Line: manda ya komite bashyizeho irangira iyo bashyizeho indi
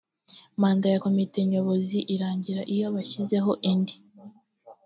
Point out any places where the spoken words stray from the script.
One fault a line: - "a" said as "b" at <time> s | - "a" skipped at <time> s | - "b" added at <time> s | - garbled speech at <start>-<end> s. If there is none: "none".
- "bashyizeho" said as "nyobozi" at 1.5 s